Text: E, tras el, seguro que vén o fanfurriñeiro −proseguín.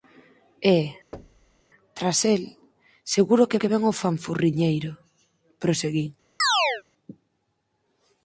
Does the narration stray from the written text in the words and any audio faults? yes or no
yes